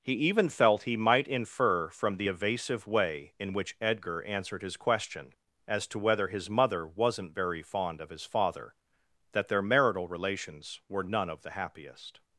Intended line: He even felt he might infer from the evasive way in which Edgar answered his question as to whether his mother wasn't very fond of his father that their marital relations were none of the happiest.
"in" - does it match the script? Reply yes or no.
yes